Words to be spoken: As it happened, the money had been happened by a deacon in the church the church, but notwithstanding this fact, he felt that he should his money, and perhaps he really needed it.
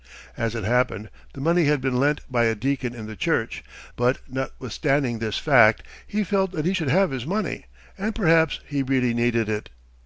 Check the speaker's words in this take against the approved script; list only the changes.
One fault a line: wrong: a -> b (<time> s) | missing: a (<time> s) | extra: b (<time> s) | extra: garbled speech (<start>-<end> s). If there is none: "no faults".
wrong: happened -> lent (2.0 s)
missing: the church (3.6 s)
extra: have (6.9 s)